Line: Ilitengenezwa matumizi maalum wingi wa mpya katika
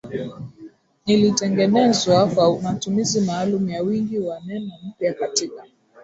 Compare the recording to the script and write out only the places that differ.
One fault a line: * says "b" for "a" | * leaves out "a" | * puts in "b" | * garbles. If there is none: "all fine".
* puts in "kwa"
* puts in "ya"
* puts in "neno"